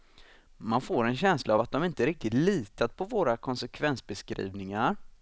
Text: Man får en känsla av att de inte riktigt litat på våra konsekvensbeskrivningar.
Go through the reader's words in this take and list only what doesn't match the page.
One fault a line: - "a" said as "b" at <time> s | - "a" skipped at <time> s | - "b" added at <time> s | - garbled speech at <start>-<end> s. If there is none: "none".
none